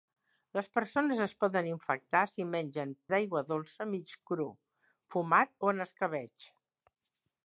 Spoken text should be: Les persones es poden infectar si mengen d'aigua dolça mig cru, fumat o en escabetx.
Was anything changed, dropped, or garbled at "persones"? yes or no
no